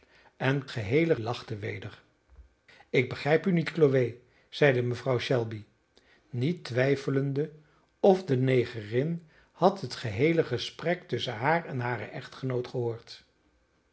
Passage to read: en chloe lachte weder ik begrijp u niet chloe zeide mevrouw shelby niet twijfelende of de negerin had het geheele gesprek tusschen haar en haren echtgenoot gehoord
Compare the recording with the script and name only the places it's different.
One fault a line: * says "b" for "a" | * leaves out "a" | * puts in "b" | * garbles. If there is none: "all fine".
* says "geheele" for "chloe"